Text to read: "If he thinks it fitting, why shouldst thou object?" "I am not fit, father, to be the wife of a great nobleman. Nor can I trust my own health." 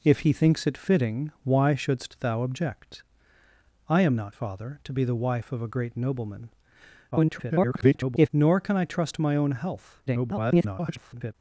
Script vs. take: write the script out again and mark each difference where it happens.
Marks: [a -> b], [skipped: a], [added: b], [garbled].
"If he thinks it fitting, why shouldst thou object?" "I am not [skipped: fit,] father, to be the wife of a great nobleman. [garbled] Nor can I trust my own health." [garbled]